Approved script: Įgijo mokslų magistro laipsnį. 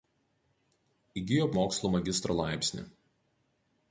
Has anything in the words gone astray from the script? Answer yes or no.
no